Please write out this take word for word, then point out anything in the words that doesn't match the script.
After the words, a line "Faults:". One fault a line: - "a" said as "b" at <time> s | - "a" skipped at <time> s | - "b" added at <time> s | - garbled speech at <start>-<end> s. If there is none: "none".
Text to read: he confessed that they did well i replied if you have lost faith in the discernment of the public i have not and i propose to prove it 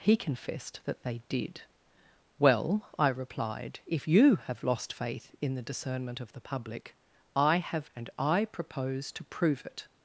he confessed that they did well i replied if you have lost faith in the discernment of the public i have and i propose to prove it
Faults:
- "not" skipped at 7.9 s